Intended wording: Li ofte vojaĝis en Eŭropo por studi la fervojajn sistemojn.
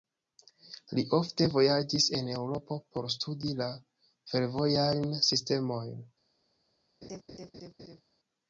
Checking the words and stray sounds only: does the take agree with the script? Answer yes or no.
no